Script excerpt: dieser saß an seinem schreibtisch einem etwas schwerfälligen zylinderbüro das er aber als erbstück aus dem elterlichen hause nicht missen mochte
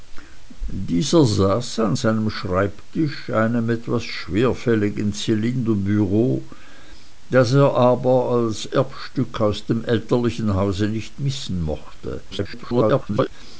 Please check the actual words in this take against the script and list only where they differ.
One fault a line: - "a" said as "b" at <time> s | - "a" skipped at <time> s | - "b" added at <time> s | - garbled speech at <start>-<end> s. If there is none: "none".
- garbled speech at 12.3-13.3 s